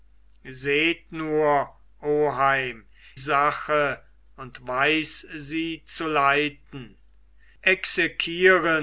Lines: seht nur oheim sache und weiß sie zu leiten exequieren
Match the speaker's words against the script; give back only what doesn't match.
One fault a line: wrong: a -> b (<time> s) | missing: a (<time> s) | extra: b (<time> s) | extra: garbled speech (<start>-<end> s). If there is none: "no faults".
no faults